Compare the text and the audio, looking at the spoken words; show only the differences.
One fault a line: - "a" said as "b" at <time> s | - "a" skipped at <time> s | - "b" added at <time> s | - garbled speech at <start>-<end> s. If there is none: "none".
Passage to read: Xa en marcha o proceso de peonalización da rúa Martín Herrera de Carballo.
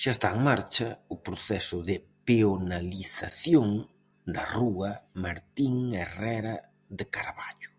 - "está" added at 0.2 s